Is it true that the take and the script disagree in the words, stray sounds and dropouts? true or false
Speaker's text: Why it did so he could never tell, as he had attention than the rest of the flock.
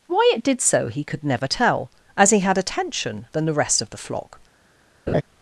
true